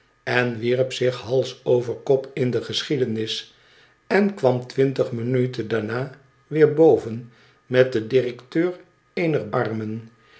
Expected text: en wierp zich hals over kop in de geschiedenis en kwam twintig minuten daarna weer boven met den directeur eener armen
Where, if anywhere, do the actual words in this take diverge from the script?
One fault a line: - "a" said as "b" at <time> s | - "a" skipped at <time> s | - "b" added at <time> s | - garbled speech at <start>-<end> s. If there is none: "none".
none